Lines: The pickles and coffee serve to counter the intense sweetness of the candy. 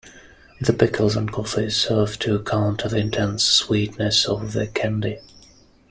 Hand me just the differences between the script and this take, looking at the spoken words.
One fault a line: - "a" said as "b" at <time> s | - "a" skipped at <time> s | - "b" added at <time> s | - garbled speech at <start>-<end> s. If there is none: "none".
none